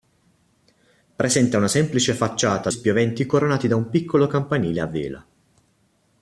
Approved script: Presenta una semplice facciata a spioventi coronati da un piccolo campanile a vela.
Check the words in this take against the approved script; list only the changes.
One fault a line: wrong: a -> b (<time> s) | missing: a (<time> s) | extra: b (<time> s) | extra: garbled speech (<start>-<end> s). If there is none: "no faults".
no faults